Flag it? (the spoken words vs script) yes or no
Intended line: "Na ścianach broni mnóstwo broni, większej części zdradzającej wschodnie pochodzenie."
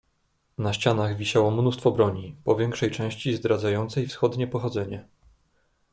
yes